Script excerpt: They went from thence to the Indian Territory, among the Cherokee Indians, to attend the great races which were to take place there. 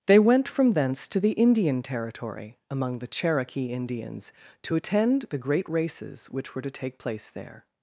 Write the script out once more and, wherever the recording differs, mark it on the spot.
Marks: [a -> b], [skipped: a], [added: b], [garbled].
They went from thence to the Indian Territory, among the Cherokee Indians, to attend the great races which were to take place there.